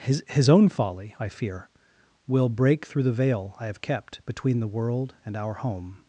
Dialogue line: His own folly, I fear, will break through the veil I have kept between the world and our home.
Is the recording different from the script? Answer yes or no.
yes